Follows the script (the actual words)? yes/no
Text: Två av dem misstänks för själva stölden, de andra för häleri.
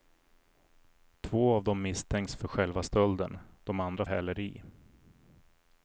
no